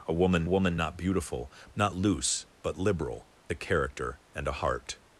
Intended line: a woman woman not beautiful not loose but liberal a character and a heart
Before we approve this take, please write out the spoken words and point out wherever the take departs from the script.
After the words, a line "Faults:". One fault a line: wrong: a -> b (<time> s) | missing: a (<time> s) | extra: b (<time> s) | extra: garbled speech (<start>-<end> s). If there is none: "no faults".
a woman woman not beautiful not loose but liberal a character and a heart
Faults:
no faults